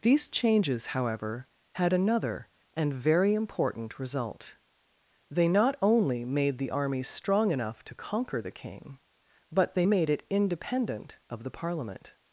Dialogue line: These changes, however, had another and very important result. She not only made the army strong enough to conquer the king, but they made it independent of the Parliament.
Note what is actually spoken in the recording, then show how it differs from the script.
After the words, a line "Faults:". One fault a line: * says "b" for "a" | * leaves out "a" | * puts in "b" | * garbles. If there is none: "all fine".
These changes, however, had another and very important result. They not only made the army strong enough to conquer the king, but they made it independent of the Parliament.
Faults:
* says "They" for "She"